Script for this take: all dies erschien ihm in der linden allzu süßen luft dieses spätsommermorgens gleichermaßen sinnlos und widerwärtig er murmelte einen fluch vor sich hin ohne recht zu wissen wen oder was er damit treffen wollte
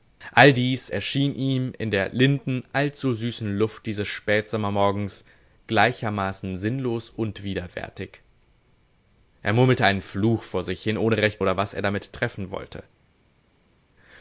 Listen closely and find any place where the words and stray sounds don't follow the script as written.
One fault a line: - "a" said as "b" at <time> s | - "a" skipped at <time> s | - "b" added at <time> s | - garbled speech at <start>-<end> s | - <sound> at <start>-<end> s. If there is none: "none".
- "zu wissen wen" skipped at 11.4 s